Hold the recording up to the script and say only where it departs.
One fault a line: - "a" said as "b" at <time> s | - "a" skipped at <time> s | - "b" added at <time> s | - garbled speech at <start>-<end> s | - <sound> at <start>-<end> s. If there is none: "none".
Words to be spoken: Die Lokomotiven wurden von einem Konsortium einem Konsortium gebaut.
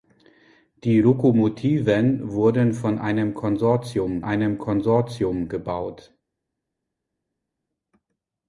none